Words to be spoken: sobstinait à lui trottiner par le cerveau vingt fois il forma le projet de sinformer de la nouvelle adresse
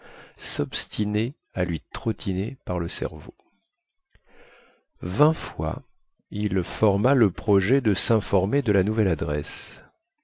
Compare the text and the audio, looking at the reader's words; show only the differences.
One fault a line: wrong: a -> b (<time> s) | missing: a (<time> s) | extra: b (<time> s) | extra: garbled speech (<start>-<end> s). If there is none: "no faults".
no faults